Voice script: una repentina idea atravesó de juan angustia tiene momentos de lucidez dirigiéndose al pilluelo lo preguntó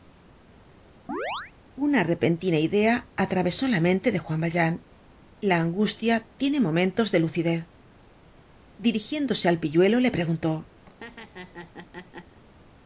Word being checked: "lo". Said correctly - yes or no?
no